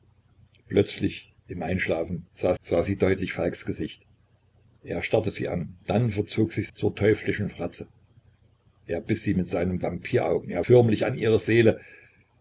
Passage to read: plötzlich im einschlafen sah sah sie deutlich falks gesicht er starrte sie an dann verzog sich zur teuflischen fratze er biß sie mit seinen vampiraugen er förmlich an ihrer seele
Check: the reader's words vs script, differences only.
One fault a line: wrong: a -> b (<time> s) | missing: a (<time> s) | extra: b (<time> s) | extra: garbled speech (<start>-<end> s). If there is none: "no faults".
no faults